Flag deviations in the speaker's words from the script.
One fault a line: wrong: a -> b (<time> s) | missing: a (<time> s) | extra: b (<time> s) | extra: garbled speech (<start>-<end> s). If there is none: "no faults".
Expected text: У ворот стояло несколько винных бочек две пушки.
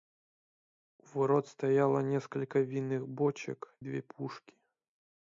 no faults